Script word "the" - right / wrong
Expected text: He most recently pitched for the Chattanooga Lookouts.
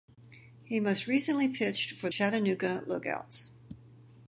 wrong